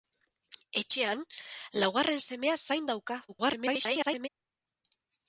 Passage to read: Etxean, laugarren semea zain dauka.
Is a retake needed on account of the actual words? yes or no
yes